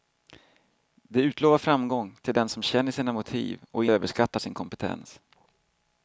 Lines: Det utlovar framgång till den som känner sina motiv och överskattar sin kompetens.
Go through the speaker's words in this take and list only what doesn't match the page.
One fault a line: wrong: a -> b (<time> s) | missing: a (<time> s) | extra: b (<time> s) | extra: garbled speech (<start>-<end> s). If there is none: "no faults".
no faults